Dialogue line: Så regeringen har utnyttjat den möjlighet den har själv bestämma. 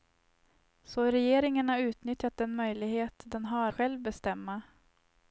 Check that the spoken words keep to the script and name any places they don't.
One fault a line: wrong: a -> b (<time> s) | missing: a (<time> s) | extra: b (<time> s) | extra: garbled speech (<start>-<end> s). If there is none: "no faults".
no faults